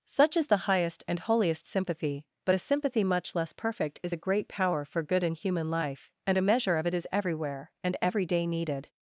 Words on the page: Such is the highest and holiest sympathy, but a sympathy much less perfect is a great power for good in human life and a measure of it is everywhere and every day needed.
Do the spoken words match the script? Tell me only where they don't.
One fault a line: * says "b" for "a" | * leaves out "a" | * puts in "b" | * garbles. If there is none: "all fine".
all fine